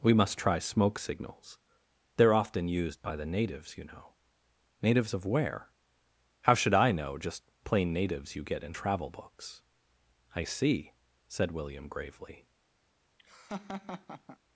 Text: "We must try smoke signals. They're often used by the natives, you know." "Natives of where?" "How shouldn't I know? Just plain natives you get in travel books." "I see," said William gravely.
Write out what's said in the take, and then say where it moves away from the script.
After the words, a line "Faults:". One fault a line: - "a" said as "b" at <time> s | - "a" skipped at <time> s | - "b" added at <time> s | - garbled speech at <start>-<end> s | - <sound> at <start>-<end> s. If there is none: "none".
"We must try smoke signals. They're often used by the natives, you know." "Natives of where?" "How should I know? Just plain natives you get in travel books." "I see," said William gravely.
Faults:
- "shouldn't" said as "should" at 6.5 s
- laugh at 13.2-14.4 s